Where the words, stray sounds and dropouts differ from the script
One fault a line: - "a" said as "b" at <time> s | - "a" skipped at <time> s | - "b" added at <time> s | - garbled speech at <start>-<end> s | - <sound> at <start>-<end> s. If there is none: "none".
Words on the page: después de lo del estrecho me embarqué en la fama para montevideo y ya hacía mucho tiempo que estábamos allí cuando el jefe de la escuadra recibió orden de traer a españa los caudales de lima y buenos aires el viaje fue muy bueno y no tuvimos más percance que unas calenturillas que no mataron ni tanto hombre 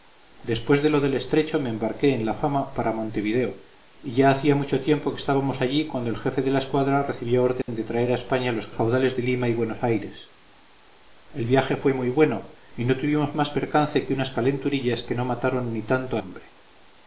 - dropout at 7.6-7.7 s